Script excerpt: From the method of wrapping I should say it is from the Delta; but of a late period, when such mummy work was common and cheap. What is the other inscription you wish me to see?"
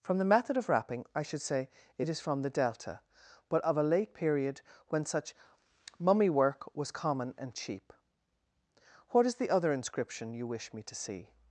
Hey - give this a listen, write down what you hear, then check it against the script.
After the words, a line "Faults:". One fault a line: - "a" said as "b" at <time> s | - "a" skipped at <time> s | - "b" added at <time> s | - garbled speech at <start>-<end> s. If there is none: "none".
From the method of wrapping I should say it is from the Delta; but of a late period, when such mummy work was common and cheap. What is the other inscription you wish me to see?"
Faults:
none